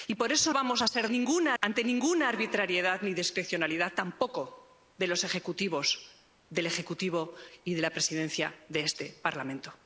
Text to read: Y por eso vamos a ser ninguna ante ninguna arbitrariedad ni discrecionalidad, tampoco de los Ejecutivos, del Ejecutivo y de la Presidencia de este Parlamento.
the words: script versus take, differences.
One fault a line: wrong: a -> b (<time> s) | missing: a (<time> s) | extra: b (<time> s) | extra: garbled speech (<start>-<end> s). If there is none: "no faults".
no faults